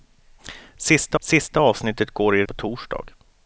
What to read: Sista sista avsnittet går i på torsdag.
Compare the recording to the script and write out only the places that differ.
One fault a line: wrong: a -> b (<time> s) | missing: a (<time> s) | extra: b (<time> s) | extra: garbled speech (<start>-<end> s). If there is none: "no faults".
no faults